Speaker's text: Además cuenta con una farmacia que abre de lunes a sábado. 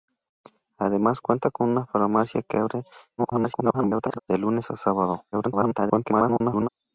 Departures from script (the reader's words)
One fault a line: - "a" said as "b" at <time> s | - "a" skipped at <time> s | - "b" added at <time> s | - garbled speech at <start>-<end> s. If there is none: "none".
- garbled speech at 3.2-4.2 s
- garbled speech at 5.3-6.7 s